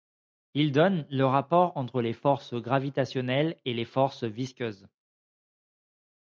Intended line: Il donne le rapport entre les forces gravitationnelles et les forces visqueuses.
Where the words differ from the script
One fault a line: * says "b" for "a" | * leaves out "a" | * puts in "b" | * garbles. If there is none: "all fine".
all fine